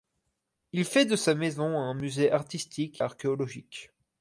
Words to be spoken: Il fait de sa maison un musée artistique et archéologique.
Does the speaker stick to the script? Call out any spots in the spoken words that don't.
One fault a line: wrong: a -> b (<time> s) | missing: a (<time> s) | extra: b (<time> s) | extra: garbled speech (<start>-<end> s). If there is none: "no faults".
missing: et (3.0 s)